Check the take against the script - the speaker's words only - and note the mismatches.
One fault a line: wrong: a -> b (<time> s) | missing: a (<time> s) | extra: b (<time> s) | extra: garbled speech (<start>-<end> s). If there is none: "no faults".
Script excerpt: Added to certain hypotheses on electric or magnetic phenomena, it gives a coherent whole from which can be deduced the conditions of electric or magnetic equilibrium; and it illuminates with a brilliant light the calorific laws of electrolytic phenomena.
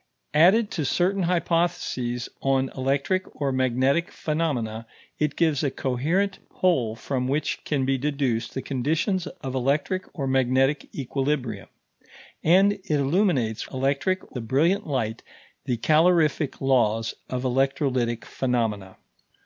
wrong: with -> electric (13.7 s)